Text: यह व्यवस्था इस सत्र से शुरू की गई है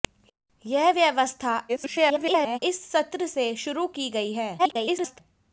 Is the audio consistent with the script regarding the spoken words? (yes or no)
no